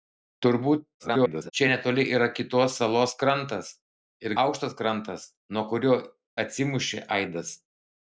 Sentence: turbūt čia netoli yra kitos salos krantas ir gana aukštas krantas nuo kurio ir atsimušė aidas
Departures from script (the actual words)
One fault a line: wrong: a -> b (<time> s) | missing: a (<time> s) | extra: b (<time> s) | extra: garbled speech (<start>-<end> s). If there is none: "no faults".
extra: garbled speech (1.0-1.5 s)
missing: gana (4.4 s)
missing: ir (6.0 s)